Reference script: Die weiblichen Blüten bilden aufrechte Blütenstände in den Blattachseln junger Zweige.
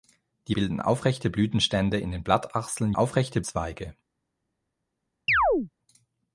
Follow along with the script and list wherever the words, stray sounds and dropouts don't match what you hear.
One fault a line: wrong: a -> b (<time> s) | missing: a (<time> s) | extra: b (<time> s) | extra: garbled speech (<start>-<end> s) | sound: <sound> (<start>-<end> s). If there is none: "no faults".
missing: weiblichen Blüten (0.6 s)
wrong: junger -> aufrechte (2.9 s)
sound: chirp (5.3-5.7 s)